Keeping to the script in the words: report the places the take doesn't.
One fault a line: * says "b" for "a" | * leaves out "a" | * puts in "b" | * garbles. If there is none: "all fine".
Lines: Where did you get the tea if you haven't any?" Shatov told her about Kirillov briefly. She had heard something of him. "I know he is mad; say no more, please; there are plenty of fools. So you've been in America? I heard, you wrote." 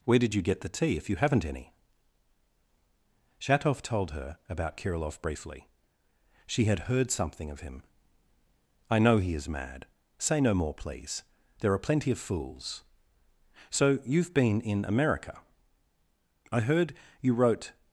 all fine